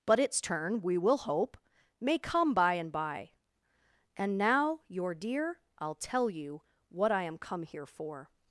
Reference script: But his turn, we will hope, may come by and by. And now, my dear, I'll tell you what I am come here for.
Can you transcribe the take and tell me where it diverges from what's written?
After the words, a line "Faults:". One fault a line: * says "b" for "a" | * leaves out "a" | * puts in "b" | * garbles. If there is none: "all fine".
But its turn, we will hope, may come by and by. And now, your dear, I'll tell you what I am come here for.
Faults:
* says "its" for "his"
* says "your" for "my"